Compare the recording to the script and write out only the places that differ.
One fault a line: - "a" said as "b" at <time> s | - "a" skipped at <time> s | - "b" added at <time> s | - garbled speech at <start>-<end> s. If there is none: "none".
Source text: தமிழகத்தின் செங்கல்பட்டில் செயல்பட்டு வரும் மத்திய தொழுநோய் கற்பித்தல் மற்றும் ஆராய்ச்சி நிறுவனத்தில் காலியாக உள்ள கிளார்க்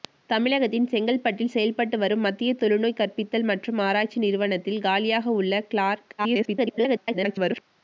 - garbled speech at 6.2-7.6 s